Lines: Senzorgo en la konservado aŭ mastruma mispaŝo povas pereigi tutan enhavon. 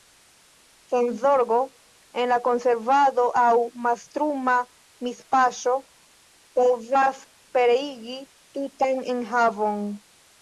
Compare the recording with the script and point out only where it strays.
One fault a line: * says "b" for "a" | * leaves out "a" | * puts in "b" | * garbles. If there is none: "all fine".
all fine